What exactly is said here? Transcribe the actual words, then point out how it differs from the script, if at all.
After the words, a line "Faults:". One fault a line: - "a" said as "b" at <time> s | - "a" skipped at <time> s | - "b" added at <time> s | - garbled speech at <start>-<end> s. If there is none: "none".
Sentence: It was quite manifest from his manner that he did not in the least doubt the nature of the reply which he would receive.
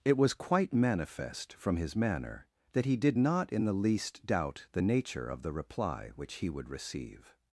It was quite manifest from his manner that he did not in the least doubt the nature of the reply which he would receive.
Faults:
none